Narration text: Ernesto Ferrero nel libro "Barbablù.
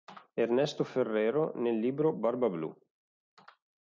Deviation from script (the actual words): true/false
false